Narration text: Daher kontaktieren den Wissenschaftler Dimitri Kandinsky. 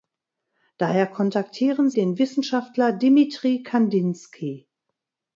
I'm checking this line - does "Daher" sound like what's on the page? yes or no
yes